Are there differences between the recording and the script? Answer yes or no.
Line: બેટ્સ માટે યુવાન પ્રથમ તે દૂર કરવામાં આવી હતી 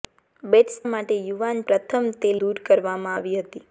no